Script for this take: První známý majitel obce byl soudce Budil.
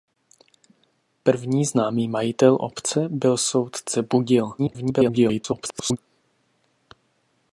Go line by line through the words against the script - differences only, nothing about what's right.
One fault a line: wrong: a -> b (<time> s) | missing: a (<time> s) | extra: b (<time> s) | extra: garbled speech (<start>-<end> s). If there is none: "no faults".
extra: garbled speech (4.6-6.0 s)